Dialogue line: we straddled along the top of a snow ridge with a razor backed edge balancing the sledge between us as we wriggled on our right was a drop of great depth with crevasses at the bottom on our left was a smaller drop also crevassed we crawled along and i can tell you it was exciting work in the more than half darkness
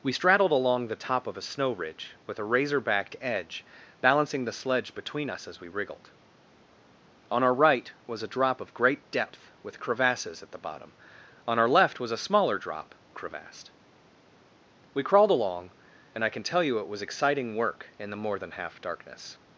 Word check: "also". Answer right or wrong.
wrong